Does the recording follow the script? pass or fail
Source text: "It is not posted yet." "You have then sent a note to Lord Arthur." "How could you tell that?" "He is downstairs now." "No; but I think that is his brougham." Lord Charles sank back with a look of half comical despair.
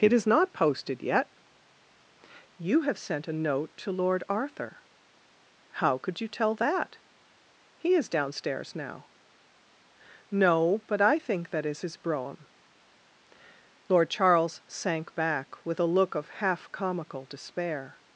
fail